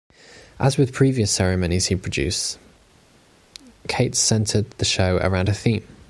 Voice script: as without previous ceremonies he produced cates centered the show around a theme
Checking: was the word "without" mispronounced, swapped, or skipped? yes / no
yes